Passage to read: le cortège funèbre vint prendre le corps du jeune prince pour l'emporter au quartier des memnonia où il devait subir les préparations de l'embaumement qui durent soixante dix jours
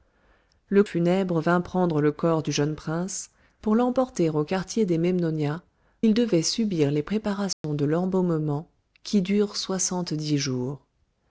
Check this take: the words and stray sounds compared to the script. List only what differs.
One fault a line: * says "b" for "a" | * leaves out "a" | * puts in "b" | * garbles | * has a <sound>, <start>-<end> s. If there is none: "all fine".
* leaves out "cortège"
* leaves out "où"
* has a dropout, 7.5-7.6 s